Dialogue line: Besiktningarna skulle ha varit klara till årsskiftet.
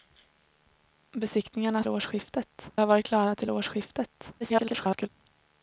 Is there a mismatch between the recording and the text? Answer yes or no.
yes